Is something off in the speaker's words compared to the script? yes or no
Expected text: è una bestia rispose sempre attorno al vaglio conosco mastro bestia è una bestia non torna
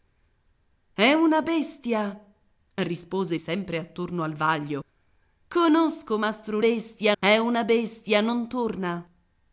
no